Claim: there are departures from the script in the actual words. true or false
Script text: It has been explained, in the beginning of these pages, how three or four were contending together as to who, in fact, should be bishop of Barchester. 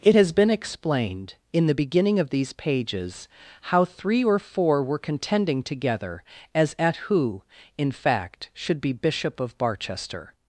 true